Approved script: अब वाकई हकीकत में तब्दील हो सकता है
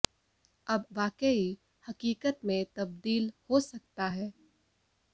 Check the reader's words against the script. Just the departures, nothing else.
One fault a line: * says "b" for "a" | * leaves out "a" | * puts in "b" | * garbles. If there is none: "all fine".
all fine